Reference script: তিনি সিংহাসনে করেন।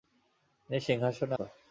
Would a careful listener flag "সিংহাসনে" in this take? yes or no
no